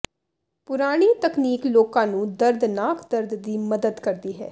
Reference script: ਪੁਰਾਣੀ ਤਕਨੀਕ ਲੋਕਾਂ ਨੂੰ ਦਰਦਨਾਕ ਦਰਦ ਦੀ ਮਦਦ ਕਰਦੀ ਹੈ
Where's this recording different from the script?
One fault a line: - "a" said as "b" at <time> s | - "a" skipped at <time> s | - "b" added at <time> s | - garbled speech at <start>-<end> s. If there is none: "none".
none